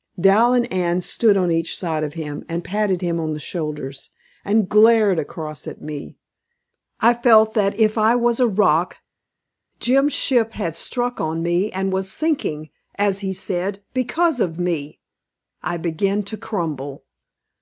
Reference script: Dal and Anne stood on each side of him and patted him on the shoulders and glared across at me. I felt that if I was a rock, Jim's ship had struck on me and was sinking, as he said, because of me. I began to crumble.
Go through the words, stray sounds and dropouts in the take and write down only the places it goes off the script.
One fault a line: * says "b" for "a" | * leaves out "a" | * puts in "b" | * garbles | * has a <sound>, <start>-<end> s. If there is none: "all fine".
all fine